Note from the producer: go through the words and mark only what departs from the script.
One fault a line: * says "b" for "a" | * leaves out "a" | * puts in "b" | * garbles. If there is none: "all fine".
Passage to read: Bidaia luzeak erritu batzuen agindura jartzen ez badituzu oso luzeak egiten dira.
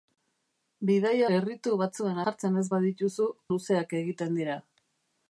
* leaves out "luzeak"
* leaves out "agindura"
* leaves out "oso"